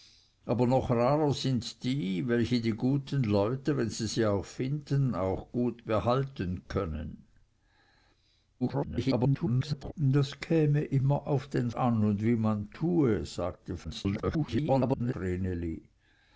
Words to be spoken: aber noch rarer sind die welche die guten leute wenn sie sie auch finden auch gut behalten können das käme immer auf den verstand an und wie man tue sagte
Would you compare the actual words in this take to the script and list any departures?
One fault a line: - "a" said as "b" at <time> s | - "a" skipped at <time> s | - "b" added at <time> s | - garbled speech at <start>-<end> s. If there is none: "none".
- garbled speech at 8.6-9.9 s
- "verstand" skipped at 11.7 s
- garbled speech at 13.8-15.1 s